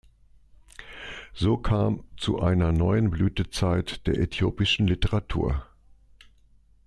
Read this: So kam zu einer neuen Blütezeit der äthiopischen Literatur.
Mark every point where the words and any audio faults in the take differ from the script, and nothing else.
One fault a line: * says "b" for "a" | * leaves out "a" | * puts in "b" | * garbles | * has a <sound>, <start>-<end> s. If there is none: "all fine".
all fine